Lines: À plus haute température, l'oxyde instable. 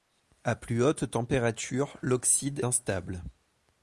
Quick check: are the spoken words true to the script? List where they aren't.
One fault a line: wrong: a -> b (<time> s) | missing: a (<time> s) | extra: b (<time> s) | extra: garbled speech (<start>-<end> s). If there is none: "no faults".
no faults